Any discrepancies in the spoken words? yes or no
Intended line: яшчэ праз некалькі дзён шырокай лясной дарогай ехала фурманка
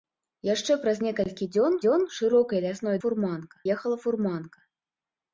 yes